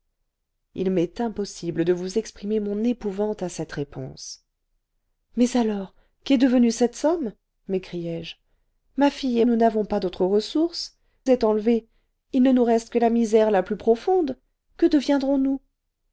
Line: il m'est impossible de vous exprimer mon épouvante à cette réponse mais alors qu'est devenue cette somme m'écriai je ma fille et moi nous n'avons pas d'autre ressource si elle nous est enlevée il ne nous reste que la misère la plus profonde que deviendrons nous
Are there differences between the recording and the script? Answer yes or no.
yes